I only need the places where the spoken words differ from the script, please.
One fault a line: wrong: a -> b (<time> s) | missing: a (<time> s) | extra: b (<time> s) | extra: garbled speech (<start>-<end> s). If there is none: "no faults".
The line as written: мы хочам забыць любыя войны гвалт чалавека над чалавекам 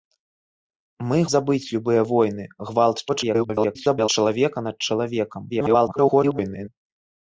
missing: хочам (1.2 s)
extra: garbled speech (3.1-4.1 s)
extra: garbled speech (5.5-6.7 s)